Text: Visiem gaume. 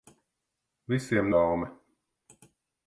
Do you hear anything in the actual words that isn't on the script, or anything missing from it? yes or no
no